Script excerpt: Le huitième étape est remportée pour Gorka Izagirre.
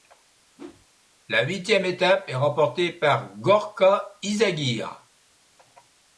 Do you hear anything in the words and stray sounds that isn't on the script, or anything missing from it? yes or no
yes